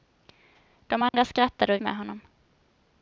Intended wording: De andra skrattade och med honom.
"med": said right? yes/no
yes